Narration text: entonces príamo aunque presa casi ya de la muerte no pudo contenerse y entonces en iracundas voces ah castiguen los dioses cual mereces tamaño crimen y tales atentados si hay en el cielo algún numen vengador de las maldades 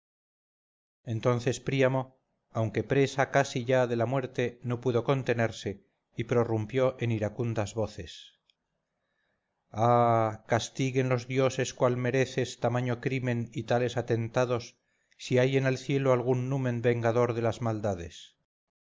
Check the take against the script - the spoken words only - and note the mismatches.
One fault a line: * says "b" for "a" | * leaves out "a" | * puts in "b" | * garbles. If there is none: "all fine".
* says "prorrumpió" for "entonces"